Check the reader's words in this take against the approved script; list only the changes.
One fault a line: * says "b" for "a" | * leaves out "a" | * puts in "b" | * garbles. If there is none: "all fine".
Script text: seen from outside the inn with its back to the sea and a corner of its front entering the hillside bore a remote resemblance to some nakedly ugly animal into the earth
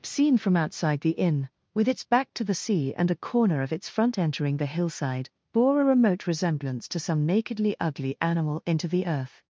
all fine